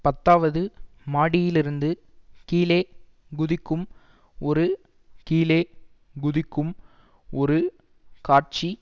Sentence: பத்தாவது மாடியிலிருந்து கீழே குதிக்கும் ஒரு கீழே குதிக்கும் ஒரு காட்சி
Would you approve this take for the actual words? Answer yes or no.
yes